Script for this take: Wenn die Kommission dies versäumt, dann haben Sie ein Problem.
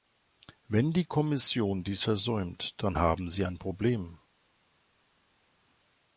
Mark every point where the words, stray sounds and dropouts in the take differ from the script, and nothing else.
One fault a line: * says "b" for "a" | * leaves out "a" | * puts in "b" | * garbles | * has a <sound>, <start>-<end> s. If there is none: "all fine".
all fine